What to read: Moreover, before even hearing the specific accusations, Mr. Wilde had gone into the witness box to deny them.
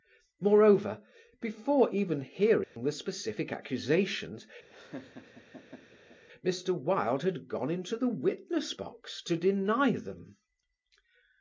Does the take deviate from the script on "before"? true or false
false